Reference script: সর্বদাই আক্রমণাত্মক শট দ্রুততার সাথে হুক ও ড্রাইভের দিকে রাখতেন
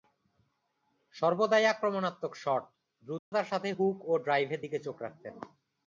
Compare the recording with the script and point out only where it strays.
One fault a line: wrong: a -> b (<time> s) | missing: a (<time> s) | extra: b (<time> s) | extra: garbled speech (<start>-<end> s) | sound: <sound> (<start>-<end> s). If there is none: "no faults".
sound: dropout (3.2-3.3 s)
extra: চোখ (4.8 s)